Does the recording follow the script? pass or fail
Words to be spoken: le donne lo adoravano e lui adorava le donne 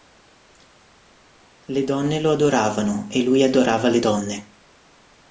pass